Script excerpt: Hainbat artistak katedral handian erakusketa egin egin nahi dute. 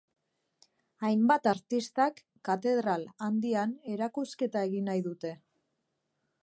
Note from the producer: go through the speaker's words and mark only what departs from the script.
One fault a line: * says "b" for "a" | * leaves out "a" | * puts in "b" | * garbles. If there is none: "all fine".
* leaves out "egin"